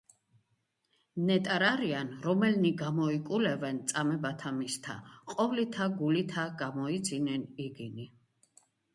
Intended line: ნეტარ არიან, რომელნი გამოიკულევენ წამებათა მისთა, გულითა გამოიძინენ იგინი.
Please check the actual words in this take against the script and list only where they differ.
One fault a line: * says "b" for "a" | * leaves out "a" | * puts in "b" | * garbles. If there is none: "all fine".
* puts in "ყოვლითა"